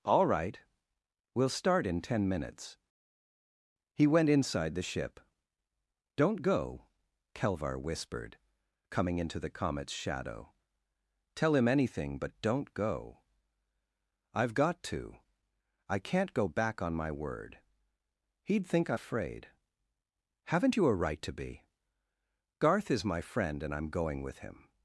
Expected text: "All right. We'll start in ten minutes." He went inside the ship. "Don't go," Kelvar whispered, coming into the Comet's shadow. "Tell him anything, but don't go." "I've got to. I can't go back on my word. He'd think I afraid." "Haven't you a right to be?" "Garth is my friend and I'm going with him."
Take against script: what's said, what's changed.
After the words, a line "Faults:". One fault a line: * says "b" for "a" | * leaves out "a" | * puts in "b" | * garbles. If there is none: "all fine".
"All right. We'll start in ten minutes." He went inside the ship. "Don't go," Kelvar whispered, coming into the Comet's shadow. "Tell him anything, but don't go." "I've got to. I can't go back on my word. He'd think I afraid." "Haven't you a right to be?" "Garth is my friend and I'm going with him."
Faults:
all fine